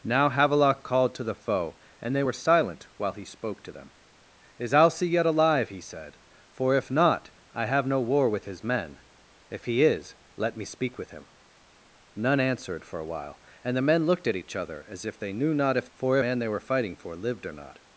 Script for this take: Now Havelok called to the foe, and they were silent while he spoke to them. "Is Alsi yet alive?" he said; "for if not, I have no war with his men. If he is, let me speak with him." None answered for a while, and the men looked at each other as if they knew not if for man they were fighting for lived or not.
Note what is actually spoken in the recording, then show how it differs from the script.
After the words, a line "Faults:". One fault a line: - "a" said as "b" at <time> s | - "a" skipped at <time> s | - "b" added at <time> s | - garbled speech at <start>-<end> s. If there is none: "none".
Now Havelok called to the foe, and they were silent while he spoke to them. "Is Alsi yet alive?" he said; "for if not, I have no war with his men. If he is, let me speak with him." None answered for a while, and the men looked at each other as if they knew not if for man they were fighting for lived or not.
Faults:
none